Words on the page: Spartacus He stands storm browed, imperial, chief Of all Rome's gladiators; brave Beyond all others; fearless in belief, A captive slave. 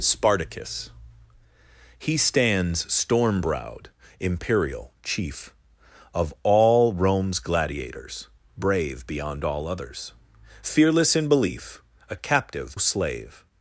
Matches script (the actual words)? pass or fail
pass